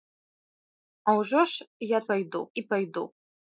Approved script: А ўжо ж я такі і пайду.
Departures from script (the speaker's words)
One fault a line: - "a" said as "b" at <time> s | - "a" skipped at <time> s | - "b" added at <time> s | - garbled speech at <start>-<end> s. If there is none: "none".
- "такі" said as "пайду" at 2.1 s